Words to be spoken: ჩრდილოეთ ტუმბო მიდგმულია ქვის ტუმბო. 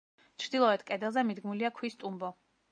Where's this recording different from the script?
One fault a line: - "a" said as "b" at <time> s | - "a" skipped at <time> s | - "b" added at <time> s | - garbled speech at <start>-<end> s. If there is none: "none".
- "ტუმბო" said as "კედელზე" at 0.9 s